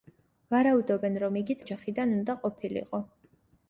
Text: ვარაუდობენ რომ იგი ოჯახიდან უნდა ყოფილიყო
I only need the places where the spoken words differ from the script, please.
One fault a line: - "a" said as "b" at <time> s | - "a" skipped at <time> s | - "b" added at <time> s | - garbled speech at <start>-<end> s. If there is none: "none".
none